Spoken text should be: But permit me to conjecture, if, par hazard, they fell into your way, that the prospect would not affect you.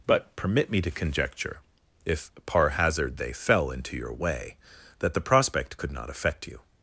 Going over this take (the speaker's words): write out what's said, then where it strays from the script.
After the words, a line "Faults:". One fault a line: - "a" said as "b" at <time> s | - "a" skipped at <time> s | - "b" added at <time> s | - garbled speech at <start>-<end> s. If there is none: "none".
But permit me to conjecture, if, par hazard, they fell into your way, that the prospect could not affect you.
Faults:
- "would" said as "could" at 5.7 s